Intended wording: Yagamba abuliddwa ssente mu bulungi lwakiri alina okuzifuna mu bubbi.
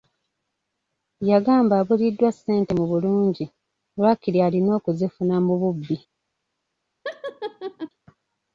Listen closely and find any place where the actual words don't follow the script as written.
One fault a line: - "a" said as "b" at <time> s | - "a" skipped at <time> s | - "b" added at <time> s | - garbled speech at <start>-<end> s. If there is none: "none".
none